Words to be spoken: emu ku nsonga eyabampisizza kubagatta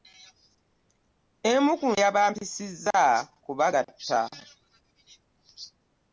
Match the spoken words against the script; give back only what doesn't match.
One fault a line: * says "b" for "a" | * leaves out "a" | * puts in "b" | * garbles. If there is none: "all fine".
* leaves out "nsonga"